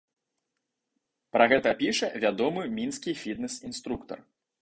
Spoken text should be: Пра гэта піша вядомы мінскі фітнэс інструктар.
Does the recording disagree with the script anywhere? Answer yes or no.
no